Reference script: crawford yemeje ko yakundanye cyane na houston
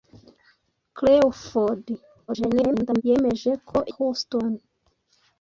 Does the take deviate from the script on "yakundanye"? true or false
true